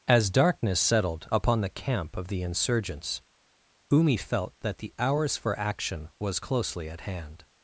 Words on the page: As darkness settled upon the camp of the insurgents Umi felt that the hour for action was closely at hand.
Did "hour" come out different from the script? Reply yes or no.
yes